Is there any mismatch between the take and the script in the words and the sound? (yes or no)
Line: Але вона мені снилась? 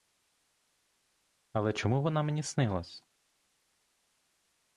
yes